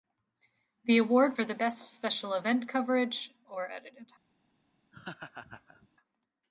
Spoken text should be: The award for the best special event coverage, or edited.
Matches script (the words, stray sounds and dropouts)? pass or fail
fail